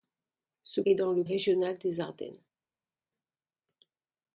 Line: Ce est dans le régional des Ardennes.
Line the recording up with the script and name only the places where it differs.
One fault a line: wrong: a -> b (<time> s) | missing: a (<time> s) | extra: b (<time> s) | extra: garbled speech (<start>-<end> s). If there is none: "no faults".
no faults